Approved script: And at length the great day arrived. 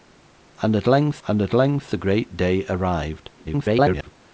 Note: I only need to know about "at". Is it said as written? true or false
true